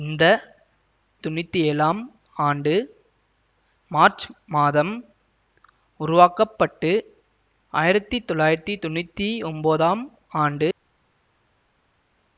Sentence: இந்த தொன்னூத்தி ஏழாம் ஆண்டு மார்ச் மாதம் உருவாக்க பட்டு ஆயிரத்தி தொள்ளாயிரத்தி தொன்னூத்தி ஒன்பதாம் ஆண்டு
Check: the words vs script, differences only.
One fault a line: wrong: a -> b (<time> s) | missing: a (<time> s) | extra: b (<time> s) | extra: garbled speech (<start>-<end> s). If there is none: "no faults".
no faults